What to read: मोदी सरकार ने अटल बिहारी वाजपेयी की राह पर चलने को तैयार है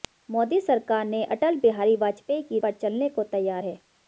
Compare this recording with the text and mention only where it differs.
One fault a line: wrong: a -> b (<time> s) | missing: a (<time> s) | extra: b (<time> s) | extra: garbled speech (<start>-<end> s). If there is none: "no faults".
missing: राह (2.6 s)